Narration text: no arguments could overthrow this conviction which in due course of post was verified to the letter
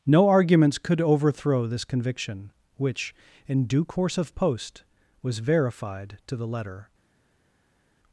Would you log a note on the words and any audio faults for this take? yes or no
no